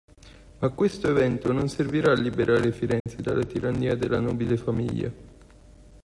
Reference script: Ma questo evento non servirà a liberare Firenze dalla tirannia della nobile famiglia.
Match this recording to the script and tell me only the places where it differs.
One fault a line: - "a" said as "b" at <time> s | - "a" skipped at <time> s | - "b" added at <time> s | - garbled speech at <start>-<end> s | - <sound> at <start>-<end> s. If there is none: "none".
- dropout at 3.0-3.1 s